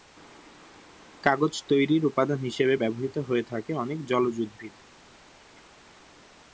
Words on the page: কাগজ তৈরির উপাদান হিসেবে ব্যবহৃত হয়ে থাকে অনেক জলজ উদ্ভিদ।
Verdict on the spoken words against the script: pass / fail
pass